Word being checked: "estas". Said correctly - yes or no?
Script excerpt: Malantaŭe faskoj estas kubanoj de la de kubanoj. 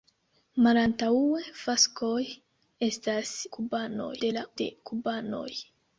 yes